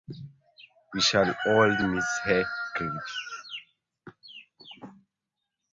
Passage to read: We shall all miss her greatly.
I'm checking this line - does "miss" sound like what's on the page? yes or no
yes